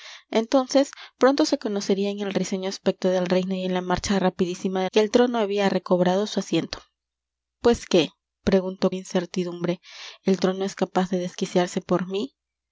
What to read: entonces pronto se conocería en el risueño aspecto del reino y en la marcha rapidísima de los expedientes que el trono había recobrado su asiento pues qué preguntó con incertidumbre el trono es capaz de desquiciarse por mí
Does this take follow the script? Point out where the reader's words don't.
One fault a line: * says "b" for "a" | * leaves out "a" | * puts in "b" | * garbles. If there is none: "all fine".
* leaves out "los expedientes"
* leaves out "con"